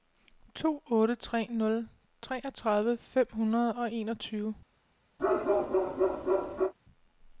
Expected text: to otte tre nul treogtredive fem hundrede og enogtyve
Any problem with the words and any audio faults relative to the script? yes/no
yes